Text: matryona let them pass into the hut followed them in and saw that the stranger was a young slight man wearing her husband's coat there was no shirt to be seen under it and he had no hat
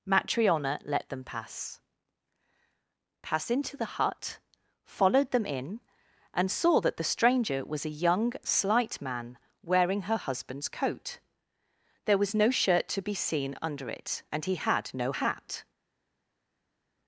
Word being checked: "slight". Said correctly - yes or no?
yes